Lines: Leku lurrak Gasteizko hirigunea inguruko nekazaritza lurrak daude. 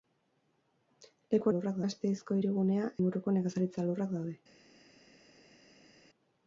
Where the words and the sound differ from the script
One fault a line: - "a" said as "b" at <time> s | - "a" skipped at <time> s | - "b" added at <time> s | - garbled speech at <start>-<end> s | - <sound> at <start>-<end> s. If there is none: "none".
none